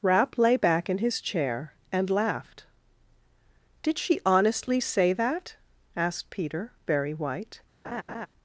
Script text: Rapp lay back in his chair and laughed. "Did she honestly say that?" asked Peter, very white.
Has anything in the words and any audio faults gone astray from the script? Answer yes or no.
yes